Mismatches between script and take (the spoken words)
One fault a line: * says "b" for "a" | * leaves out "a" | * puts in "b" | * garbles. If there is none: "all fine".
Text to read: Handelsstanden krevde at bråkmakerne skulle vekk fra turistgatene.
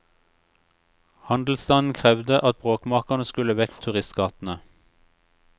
* leaves out "fra"